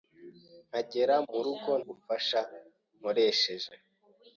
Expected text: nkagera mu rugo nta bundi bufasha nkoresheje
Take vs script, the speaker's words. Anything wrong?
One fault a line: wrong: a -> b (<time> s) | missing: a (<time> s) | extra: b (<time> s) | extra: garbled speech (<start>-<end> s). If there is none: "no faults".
missing: nta bundi (1.7 s)